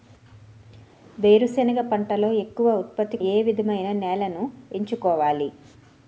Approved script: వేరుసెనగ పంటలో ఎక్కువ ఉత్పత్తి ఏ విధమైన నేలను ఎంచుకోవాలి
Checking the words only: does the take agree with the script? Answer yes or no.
yes